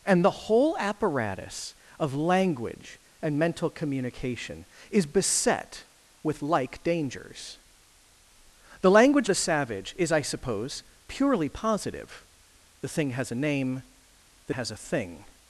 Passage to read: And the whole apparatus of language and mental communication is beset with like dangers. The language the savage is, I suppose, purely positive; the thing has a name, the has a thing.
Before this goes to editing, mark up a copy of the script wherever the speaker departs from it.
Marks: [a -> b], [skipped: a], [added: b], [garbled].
And the whole apparatus of language and mental communication is beset with like dangers. The language the savage is, I suppose, purely positive; the thing has a name, the has a thing.